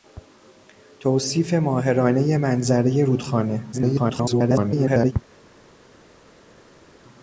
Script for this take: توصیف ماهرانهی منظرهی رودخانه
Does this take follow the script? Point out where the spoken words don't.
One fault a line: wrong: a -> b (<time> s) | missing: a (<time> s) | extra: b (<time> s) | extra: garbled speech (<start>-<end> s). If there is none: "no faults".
extra: garbled speech (3.7-5.1 s)